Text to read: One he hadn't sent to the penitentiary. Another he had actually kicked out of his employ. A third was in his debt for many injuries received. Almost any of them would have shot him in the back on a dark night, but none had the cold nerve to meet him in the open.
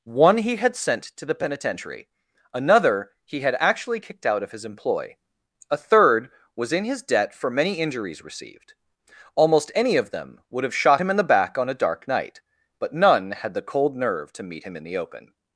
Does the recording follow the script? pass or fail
fail